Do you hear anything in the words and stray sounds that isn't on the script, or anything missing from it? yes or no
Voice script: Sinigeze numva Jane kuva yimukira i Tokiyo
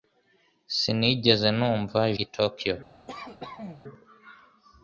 yes